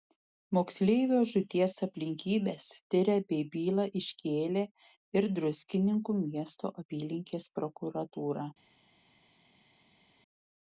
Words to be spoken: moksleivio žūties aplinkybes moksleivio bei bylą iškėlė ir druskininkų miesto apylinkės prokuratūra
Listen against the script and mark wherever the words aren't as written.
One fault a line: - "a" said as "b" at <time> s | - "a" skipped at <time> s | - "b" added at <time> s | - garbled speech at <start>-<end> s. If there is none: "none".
- "moksleivio" said as "tiria" at 3.0 s